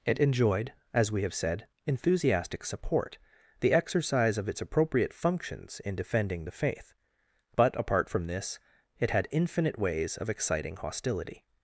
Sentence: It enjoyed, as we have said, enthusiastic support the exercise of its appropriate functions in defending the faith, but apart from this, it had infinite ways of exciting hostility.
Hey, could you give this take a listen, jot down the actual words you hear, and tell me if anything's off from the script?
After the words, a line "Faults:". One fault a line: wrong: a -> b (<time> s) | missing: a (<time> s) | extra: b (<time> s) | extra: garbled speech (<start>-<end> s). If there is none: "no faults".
It enjoyed, as we have said, enthusiastic support the exercise of its appropriate functions in defending the faith, but apart from this, it had infinite ways of exciting hostility.
Faults:
no faults